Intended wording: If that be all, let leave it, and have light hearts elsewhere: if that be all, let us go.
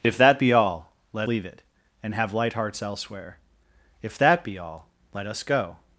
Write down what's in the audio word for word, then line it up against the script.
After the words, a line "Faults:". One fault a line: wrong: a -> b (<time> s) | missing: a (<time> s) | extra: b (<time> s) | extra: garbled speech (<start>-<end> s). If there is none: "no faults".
If that be all, let leave it, and have light hearts elsewhere: if that be all, let us go.
Faults:
no faults